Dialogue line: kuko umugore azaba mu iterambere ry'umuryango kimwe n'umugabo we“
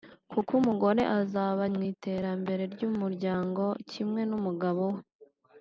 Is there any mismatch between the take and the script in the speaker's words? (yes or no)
no